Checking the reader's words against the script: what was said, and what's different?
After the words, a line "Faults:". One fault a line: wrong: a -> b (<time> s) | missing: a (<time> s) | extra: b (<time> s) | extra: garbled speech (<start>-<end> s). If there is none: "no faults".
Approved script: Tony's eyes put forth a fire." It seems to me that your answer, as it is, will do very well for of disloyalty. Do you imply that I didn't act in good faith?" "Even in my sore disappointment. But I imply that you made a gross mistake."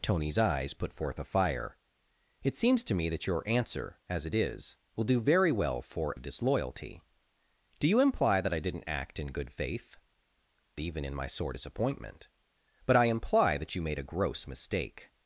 Tony's eyes put forth a fire." It seems to me that your answer, as it is, will do very well for of disloyalty. Do you imply that I didn't act in good faith?" "Even in my sore disappointment. But I imply that you made a gross mistake."
Faults:
no faults